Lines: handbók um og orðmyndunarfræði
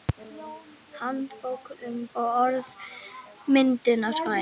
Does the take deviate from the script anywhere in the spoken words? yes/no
no